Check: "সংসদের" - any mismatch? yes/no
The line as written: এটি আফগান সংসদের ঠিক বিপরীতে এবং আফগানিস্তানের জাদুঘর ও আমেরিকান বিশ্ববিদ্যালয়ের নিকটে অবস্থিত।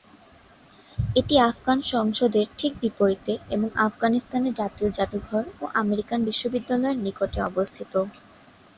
no